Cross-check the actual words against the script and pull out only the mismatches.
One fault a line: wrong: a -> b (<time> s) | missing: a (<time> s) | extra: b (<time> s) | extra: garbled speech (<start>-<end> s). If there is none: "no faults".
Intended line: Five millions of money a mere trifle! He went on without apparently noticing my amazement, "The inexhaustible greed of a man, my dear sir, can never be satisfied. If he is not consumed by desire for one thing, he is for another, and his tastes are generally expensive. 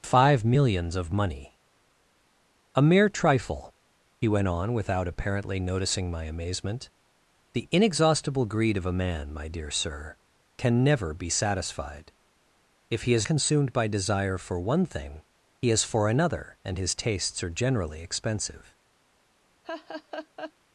missing: not (13.3 s)